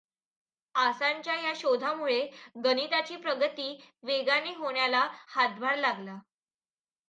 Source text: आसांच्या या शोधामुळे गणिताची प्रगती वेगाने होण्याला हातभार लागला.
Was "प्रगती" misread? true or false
false